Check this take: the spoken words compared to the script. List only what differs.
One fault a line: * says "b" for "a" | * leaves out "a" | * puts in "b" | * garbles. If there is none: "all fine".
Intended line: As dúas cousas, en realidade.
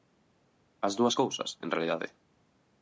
all fine